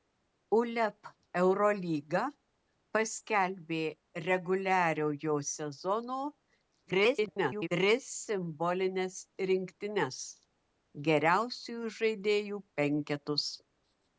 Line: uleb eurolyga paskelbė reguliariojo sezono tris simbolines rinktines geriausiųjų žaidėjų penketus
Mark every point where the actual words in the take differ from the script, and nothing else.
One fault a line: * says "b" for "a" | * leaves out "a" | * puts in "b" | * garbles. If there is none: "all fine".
* garbles